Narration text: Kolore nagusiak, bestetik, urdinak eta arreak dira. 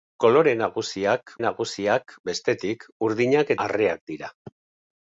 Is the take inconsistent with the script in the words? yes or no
yes